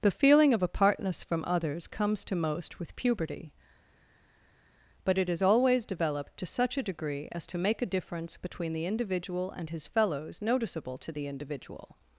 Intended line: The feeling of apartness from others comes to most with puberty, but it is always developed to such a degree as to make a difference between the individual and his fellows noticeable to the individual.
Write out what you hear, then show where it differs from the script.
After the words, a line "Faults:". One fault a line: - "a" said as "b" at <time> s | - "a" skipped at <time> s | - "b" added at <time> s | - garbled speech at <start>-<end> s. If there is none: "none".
The feeling of apartness from others comes to most with puberty, but it is always developed to such a degree as to make a difference between the individual and his fellows noticeable to the individual.
Faults:
none